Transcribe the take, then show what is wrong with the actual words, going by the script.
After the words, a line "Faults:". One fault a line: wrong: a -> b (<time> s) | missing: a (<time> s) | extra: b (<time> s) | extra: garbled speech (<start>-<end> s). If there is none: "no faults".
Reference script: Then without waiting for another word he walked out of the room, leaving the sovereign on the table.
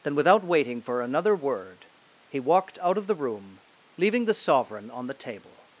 Then without waiting for another word he walked out of the room, leaving the sovereign on the table.
Faults:
no faults